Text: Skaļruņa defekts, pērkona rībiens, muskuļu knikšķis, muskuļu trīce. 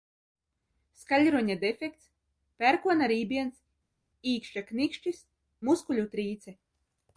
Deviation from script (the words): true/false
true